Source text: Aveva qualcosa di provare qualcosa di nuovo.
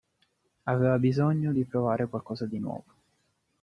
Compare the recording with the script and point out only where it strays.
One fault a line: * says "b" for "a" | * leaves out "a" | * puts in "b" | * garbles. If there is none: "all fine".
* says "bisogno" for "qualcosa"